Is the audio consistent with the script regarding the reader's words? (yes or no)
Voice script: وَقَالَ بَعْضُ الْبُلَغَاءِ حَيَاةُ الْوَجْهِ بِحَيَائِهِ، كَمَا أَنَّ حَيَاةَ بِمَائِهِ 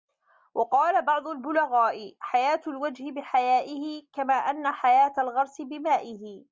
no